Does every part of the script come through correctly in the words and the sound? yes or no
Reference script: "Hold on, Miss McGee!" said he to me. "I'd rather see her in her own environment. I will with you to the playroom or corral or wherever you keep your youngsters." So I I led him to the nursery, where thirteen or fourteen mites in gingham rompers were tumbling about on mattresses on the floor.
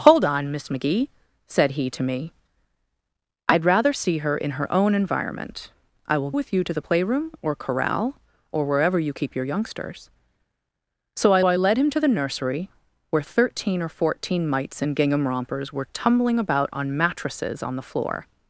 yes